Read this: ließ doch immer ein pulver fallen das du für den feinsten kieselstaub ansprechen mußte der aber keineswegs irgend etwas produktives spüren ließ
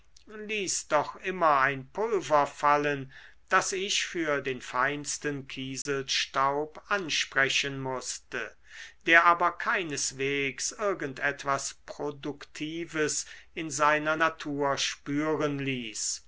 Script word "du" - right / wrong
wrong